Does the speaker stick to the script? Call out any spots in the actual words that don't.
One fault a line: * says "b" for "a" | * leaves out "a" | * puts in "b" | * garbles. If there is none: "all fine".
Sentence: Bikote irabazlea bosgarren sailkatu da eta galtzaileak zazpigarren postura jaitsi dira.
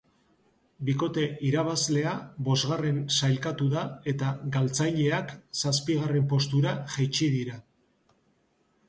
all fine